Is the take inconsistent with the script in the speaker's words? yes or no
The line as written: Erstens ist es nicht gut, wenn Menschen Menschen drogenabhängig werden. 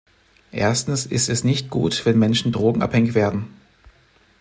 yes